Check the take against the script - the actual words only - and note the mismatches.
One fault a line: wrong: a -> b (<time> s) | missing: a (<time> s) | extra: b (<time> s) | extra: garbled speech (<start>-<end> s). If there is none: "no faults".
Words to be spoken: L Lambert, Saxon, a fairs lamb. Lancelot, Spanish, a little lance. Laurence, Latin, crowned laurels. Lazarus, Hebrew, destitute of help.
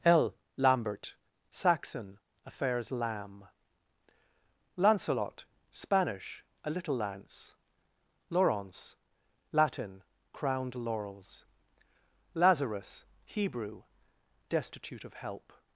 no faults